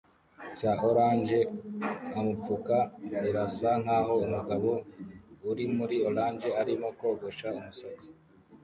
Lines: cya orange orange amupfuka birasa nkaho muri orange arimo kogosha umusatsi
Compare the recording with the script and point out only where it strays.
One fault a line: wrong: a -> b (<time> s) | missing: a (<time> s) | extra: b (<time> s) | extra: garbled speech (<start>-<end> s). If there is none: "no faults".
missing: orange (1.4 s)
extra: umugabo uri (4.2 s)